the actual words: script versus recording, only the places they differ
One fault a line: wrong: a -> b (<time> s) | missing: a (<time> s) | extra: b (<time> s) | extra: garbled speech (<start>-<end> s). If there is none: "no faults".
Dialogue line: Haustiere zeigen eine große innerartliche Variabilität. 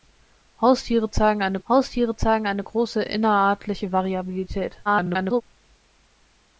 extra: haustiere zeigen eine (1.7 s)
extra: garbled speech (4.9-5.4 s)